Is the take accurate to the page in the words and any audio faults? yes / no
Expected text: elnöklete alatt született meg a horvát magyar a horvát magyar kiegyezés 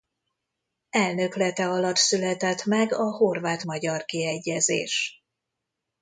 no